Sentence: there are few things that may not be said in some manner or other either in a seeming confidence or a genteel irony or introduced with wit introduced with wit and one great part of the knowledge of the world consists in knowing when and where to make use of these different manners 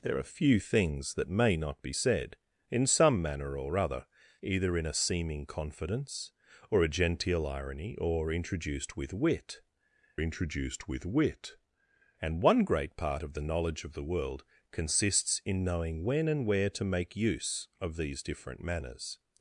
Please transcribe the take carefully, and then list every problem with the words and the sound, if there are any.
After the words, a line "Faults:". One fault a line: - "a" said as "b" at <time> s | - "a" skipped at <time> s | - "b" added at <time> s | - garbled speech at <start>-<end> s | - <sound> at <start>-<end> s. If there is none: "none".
there are few things that may not be said in some manner or other either in a seeming confidence or a genteel irony or introduced with wit introduced with wit and one great part of the knowledge of the world consists in knowing when and where to make use of these different manners
Faults:
none